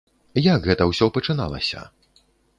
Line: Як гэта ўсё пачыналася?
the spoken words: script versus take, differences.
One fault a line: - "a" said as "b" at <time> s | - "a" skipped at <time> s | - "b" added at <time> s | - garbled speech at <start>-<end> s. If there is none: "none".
none